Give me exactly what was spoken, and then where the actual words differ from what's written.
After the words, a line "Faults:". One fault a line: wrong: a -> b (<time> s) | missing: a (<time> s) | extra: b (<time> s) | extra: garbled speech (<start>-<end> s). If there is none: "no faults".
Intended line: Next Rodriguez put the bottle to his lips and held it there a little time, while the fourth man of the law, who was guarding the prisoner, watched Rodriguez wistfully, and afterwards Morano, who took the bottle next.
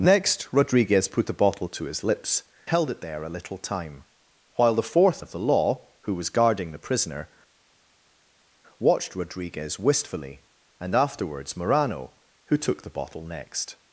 Next Rodriguez put the bottle to his lips held it there a little time, while the fourth of the law, who was guarding the prisoner, watched Rodriguez wistfully, and afterwards Morano, who took the bottle next.
Faults:
missing: and (2.5 s)
missing: man (5.2 s)